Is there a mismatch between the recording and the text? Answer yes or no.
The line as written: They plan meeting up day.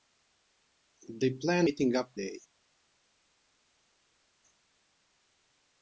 no